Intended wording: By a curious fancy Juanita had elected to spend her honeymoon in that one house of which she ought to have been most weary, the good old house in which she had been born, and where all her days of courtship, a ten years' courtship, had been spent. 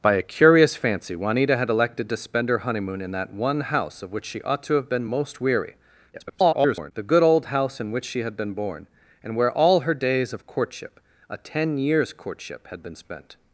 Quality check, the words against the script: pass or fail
fail